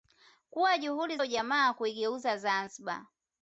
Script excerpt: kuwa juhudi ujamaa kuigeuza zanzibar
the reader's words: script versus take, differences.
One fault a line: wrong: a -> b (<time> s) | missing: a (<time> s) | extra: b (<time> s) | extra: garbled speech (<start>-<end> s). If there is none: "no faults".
no faults